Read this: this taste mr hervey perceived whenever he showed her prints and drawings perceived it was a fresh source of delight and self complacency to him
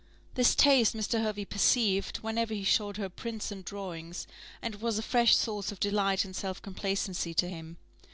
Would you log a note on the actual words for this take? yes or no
yes